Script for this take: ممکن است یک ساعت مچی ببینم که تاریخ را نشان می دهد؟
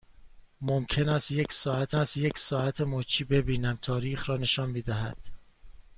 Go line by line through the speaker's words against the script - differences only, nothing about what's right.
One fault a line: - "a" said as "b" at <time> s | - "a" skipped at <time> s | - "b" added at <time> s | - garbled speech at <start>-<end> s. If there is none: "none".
- "است یک ساعت" added at 1.9 s
- "که" skipped at 3.8 s